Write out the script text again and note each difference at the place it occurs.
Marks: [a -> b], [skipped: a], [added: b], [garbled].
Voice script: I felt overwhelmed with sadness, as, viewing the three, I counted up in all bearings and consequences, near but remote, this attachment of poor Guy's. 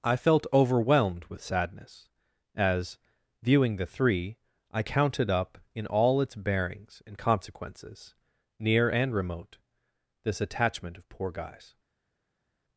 I felt overwhelmed with sadness, as, viewing the three, I counted up in all [added: its] bearings and consequences, near [but -> and] remote, this attachment of poor Guy's.